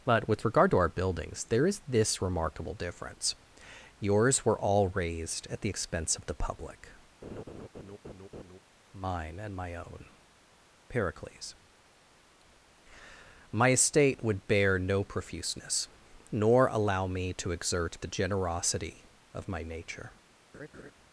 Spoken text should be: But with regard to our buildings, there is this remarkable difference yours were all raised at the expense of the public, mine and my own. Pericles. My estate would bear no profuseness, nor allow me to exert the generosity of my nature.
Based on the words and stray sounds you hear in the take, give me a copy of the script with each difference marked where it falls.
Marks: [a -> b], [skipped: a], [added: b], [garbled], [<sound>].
But with regard to our buildings, there is this remarkable difference yours were all raised at the expense of the public, [laugh] mine and my own. Pericles. My estate would bear no profuseness, nor allow me to exert the generosity of my nature. [laugh]